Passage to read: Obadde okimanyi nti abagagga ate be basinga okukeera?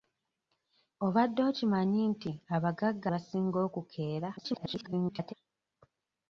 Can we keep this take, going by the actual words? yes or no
no